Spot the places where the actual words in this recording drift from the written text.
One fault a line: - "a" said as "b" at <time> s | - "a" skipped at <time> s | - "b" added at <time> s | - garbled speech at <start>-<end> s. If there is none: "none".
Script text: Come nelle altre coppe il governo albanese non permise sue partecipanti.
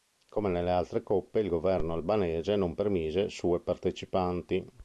none